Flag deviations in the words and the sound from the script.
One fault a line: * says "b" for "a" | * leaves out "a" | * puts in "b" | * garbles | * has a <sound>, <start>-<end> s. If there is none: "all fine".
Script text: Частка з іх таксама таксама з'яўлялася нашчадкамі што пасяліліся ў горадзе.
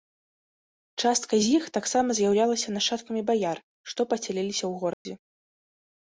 * leaves out "таксама"
* puts in "баяр"
* has a dropout, 4.9-5.1 s